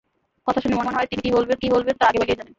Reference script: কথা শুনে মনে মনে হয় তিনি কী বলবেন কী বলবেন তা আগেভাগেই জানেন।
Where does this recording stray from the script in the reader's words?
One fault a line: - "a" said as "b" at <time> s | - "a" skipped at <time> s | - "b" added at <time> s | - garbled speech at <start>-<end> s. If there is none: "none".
none